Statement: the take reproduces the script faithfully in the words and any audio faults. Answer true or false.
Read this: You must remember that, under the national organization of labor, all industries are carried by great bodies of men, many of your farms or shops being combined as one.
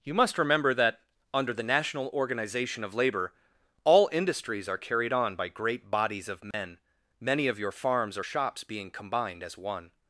false